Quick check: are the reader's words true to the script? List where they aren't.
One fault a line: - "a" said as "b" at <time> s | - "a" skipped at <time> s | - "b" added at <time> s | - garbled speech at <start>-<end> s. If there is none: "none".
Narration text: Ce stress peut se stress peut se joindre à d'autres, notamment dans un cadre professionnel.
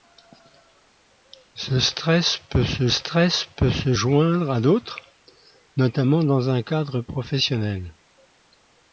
none